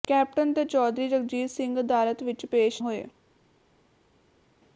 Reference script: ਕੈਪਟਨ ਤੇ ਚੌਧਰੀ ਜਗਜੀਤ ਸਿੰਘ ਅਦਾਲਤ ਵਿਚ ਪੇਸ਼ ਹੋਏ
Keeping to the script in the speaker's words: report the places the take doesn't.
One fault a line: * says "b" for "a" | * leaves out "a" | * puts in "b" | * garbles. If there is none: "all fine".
all fine